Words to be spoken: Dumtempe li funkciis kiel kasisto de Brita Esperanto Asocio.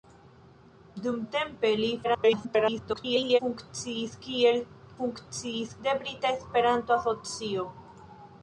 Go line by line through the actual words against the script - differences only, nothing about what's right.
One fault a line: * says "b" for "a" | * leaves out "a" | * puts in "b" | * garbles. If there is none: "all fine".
* garbles
* says "funkciis" for "kasisto"